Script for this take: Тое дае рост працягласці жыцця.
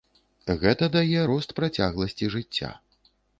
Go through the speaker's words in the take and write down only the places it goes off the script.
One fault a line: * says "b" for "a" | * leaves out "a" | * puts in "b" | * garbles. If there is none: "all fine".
* says "Гэта" for "Тое"